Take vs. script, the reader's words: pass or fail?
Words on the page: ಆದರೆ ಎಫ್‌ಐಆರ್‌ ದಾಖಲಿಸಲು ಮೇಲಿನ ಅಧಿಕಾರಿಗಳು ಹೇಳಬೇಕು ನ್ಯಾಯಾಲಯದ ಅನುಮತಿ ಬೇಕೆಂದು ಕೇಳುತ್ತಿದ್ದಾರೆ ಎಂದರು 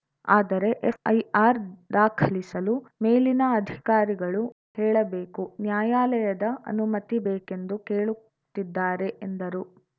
pass